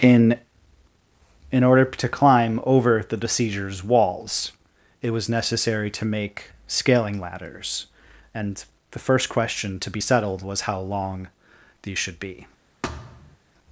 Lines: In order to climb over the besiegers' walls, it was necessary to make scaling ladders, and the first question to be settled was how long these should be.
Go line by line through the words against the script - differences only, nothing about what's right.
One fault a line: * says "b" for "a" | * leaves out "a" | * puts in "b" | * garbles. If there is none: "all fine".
* puts in "in"